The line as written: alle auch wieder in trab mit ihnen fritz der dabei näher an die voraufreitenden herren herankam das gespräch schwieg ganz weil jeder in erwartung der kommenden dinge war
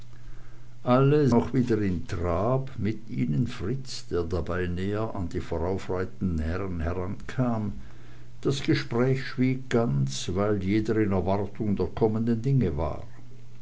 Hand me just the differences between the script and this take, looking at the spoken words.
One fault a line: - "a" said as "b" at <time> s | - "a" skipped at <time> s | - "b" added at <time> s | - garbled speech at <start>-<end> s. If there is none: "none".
none